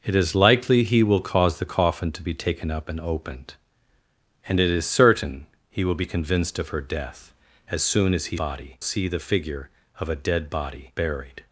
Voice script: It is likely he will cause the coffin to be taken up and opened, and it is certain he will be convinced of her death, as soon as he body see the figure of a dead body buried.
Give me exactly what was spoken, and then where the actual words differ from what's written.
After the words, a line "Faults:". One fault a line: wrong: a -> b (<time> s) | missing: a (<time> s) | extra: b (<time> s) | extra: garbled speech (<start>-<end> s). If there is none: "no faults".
It is likely he will cause the coffin to be taken up and opened, and it is certain he will be convinced of her death, as soon as he body see the figure of a dead body buried.
Faults:
no faults